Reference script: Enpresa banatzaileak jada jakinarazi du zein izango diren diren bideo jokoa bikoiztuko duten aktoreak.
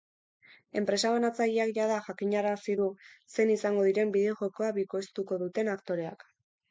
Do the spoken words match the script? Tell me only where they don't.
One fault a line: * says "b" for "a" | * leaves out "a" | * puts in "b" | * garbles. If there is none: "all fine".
* leaves out "diren"